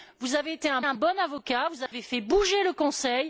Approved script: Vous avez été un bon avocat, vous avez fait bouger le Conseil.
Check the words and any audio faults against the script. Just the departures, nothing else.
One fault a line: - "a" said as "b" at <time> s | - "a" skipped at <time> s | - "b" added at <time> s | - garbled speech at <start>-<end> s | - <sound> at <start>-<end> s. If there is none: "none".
- "un" added at 0.8 s
- dropout at 1.9-1.9 s